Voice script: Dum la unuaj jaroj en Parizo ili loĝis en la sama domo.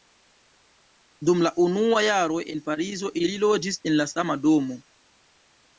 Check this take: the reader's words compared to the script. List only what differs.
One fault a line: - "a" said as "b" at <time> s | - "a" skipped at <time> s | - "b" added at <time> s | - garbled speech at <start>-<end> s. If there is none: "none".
none